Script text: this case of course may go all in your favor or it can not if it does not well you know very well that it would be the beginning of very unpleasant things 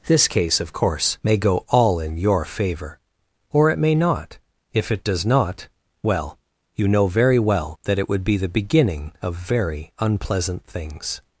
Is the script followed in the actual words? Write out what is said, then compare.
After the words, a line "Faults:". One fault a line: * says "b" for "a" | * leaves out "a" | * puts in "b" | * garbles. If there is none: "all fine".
this case of course may go all in your favor or it may not if it does not well you know very well that it would be the beginning of very unpleasant things
Faults:
* says "may" for "can"